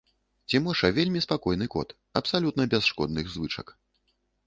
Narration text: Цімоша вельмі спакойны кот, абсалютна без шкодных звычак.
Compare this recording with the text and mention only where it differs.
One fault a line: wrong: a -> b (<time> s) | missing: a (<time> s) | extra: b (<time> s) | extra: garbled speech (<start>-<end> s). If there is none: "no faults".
no faults